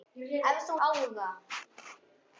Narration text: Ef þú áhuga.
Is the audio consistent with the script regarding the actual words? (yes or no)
yes